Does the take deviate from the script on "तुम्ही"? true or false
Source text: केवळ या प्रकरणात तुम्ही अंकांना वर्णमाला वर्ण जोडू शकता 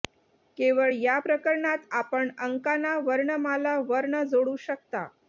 true